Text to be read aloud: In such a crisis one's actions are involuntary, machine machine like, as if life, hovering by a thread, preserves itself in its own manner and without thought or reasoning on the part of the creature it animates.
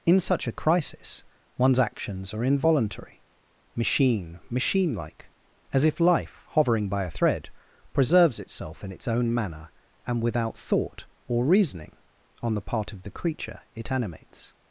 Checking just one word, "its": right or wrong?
right